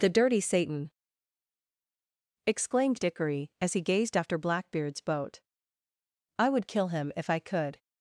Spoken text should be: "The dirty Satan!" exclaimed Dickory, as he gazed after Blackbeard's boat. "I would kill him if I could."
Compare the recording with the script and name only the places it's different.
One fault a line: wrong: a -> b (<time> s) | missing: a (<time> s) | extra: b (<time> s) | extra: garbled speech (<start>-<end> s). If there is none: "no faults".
no faults